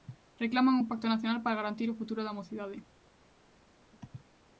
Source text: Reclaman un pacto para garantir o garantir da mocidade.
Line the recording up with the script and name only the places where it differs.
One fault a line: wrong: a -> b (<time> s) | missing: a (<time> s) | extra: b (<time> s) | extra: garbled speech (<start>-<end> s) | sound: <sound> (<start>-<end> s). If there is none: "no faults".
extra: nacional (1.1 s)
wrong: garantir -> futuro (2.0 s)